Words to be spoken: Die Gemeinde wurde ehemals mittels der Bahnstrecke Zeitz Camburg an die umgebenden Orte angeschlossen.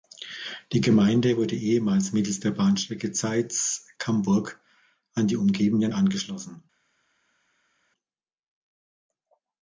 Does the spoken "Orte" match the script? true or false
false